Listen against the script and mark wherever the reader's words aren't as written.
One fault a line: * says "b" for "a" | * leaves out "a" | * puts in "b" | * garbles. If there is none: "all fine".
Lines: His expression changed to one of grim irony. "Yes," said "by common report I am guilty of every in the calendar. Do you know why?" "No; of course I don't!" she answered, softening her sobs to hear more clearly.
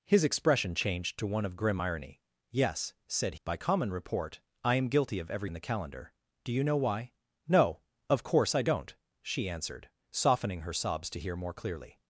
all fine